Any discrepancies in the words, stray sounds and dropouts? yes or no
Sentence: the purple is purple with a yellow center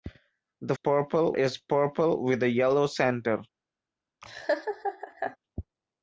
yes